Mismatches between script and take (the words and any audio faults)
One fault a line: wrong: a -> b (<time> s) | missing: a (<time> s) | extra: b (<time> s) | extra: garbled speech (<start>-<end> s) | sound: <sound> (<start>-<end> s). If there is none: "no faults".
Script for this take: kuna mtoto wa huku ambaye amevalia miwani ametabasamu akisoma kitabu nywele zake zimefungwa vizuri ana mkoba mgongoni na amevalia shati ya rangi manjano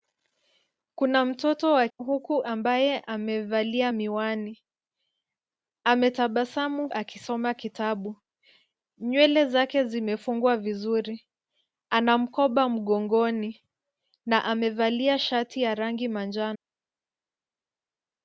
no faults